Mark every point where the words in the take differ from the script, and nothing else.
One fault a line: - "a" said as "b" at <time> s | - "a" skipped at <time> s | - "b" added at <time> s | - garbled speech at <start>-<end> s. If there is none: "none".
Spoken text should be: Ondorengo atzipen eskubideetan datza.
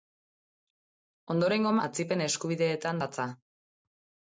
none